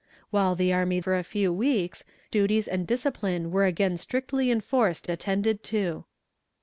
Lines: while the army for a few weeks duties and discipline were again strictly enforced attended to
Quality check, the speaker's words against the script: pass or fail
pass